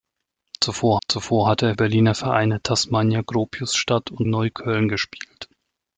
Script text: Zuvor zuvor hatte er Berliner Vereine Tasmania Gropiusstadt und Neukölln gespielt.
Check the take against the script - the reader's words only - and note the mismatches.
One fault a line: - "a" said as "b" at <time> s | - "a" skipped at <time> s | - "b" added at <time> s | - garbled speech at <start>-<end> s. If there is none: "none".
none